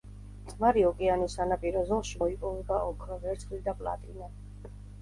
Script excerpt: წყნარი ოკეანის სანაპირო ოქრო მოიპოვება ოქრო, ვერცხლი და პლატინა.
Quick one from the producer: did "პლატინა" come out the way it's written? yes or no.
yes